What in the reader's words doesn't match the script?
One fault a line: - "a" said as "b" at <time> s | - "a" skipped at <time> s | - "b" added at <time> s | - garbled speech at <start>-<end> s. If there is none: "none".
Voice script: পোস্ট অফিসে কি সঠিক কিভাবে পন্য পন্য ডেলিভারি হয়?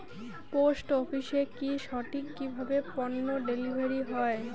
- "পন্য" skipped at 3.3 s